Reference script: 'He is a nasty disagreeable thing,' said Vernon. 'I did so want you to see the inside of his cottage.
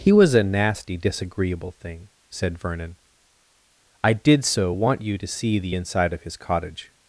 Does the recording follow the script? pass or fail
fail